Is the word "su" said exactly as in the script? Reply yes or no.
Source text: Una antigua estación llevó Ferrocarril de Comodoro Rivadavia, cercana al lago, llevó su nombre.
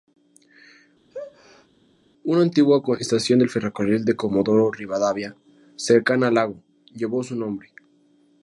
yes